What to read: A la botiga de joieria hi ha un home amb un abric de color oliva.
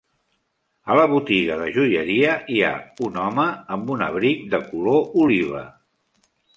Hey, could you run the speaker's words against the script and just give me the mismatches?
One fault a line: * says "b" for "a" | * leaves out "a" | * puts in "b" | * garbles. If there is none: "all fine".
all fine